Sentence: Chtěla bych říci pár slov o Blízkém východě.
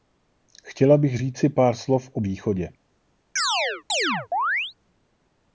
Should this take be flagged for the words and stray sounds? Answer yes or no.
yes